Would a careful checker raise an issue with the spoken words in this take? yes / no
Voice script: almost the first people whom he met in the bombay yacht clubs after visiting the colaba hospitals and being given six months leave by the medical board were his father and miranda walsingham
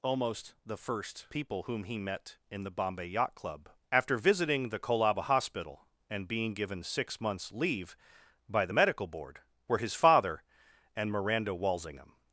yes